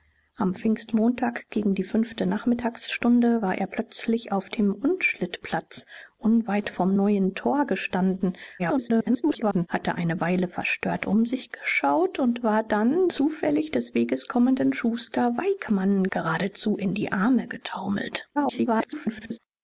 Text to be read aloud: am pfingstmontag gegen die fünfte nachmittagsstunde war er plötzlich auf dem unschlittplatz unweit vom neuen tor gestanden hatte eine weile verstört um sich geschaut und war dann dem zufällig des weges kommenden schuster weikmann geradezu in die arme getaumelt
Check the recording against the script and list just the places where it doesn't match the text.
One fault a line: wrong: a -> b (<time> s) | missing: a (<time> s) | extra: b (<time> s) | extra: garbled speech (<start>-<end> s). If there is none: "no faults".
extra: garbled speech (8.6-9.7 s)
missing: dem (13.1 s)
extra: garbled speech (18.3-19.4 s)